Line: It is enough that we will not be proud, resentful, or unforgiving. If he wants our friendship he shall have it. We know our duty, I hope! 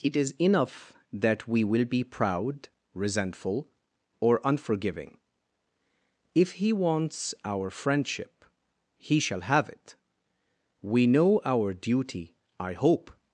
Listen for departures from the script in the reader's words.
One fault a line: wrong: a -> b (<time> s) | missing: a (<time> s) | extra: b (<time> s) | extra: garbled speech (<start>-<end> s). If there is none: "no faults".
missing: not (1.9 s)